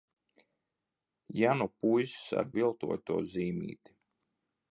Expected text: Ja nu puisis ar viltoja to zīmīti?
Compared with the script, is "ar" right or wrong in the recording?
right